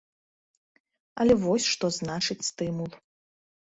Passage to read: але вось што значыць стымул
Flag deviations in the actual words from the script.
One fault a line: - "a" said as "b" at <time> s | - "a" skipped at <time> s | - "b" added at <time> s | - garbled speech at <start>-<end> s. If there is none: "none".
none